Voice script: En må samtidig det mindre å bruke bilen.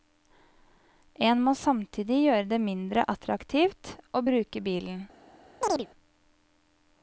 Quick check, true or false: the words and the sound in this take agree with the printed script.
false